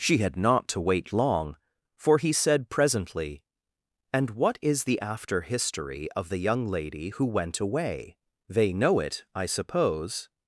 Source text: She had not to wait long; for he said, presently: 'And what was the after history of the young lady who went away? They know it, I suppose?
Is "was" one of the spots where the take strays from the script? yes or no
yes